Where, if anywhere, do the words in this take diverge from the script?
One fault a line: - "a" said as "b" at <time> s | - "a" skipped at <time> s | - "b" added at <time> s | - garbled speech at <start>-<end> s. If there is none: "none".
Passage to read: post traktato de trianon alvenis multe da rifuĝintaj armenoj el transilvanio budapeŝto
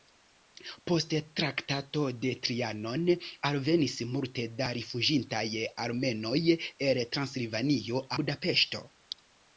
none